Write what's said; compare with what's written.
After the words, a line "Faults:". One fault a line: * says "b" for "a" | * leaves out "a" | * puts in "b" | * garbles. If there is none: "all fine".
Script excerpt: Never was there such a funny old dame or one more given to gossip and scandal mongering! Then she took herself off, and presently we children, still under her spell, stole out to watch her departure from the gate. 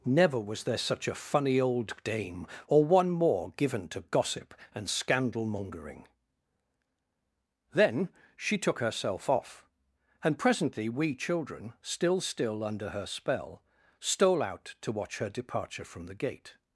Never was there such a funny old dame or one more given to gossip and scandal mongering! Then she took herself off, and presently we children, still still under her spell, stole out to watch her departure from the gate.
Faults:
* puts in "still"